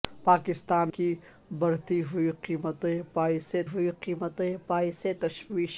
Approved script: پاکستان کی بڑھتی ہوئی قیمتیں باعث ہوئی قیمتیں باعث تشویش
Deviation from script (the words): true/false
false